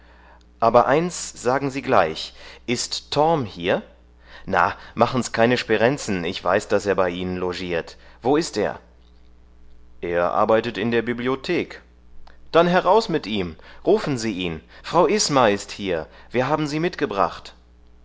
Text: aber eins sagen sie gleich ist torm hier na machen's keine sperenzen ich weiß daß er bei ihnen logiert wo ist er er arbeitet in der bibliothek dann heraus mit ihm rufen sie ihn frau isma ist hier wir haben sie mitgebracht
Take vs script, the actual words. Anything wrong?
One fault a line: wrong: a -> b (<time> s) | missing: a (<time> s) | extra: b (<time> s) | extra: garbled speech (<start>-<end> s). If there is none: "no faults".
no faults